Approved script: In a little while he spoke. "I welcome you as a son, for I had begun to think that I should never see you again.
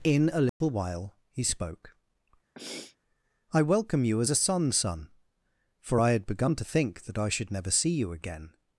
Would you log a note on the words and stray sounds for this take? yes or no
yes